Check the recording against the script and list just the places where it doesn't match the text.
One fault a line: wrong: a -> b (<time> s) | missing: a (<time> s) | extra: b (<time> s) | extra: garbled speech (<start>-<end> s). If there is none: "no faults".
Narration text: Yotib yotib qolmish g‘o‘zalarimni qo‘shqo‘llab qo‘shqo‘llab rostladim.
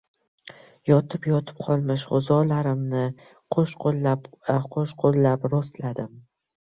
no faults